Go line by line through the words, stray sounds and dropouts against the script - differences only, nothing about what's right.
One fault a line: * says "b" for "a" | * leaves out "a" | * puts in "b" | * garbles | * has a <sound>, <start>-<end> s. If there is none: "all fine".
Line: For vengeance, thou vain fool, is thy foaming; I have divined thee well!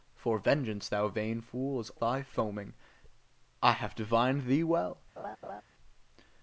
* has a laugh, 5.2-5.6 s